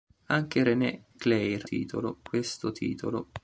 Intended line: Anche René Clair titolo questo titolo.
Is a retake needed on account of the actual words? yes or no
no